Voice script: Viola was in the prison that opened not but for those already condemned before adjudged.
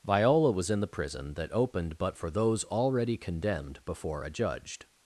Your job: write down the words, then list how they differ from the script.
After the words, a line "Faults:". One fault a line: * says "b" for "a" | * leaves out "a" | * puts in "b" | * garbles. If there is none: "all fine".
Viola was in the prison that opened but for those already condemned before adjudged.
Faults:
* leaves out "not"